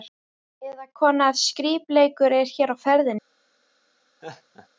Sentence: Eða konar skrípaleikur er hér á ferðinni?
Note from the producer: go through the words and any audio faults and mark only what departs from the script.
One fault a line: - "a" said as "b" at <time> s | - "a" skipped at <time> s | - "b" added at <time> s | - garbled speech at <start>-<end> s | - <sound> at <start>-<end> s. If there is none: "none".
- laugh at 4.2-4.7 s